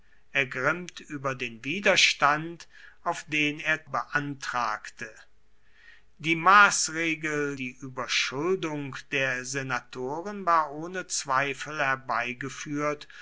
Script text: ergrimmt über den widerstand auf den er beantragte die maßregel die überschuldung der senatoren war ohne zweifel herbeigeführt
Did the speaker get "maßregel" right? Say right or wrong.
right